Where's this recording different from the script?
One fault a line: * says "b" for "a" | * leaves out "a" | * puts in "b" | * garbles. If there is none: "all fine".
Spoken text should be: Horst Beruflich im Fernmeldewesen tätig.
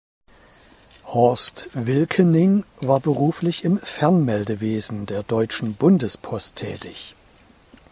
* puts in "Wilkening war"
* puts in "der Deutschen Bundespost"